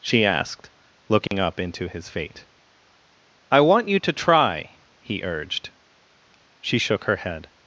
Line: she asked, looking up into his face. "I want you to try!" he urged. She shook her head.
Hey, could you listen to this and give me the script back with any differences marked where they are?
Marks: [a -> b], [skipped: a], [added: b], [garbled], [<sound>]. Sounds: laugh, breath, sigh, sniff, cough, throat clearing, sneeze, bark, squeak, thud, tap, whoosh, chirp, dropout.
she asked, looking [dropout] up into his [face. -> fate] "I want you to try!" he urged. She shook her head.